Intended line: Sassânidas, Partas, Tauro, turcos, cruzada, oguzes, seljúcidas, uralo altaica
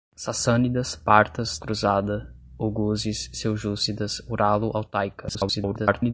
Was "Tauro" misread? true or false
true